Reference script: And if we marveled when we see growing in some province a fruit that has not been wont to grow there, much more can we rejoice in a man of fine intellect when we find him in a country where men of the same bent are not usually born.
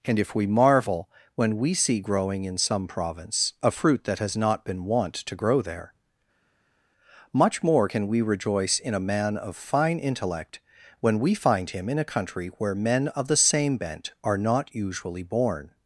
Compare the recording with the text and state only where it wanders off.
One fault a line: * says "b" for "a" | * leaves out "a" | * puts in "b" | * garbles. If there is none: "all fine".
* says "marvel" for "marveled"